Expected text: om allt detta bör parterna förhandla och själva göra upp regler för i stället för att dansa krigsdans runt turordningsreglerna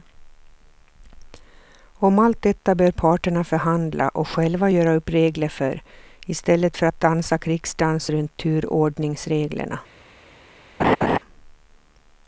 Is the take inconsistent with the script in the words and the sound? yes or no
yes